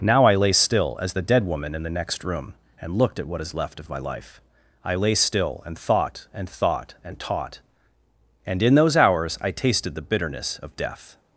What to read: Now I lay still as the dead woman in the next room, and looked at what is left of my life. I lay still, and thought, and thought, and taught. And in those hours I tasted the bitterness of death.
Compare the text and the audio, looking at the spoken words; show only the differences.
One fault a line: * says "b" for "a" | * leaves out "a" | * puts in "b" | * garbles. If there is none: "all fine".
all fine